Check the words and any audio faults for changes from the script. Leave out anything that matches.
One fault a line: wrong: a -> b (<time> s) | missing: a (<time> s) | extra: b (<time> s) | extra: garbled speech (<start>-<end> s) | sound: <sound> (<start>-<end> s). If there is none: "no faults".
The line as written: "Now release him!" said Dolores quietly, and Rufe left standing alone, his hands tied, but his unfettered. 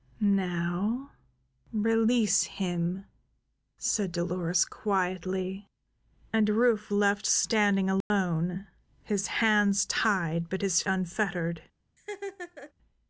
sound: dropout (8.0-8.1 s)
sound: laugh (12.0-12.7 s)